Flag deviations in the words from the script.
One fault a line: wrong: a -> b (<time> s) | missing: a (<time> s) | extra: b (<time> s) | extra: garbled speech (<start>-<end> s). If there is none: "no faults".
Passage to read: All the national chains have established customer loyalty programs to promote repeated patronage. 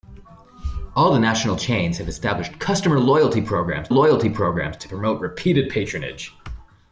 extra: loyalty programs (3.9 s)